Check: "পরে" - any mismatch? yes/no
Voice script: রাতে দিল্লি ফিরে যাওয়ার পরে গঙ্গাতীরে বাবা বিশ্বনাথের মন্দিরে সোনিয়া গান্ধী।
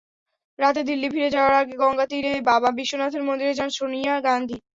yes